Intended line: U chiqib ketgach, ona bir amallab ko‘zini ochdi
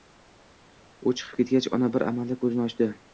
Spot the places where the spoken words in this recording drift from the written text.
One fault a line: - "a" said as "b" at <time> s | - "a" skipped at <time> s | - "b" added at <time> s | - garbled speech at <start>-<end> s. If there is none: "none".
none